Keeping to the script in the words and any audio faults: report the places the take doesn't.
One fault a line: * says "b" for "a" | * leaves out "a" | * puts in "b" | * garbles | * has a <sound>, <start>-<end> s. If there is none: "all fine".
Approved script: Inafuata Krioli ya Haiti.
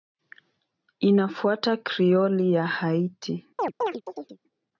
* has a chirp, 3.6-4.4 s